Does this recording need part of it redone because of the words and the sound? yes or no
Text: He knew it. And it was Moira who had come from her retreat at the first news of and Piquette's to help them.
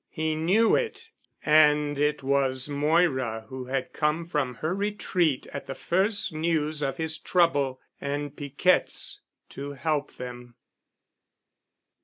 yes